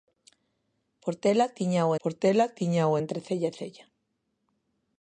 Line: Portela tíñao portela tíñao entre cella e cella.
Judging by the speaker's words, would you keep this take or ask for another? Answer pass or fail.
pass